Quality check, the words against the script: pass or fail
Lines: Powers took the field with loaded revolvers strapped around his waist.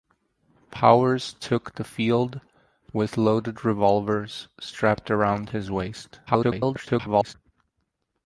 fail